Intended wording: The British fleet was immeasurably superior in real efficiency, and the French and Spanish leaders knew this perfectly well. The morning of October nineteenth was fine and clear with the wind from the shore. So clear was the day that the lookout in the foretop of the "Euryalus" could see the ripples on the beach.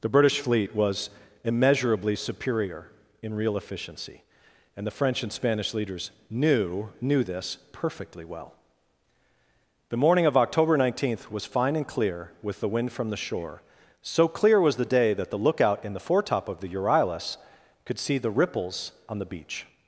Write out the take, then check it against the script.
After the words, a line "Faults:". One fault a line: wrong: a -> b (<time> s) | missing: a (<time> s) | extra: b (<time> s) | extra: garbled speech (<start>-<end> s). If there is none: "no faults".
The British fleet was immeasurably superior in real efficiency, and the French and Spanish leaders knew knew this perfectly well. The morning of October nineteenth was fine and clear with the wind from the shore. So clear was the day that the lookout in the foretop of the "Euryalus" could see the ripples on the beach.
Faults:
extra: knew (7.0 s)